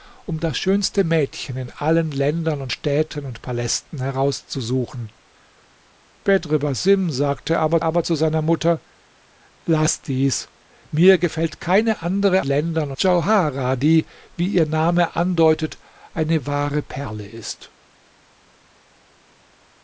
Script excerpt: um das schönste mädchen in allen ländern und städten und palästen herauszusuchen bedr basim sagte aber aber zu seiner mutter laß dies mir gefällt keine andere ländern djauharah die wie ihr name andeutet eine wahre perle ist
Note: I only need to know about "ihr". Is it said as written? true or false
true